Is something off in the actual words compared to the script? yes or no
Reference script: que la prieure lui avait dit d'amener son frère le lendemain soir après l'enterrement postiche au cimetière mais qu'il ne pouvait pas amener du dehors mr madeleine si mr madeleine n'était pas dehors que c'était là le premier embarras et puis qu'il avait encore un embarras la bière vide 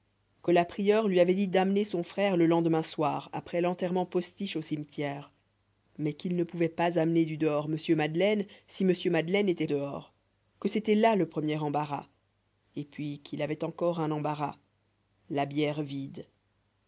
yes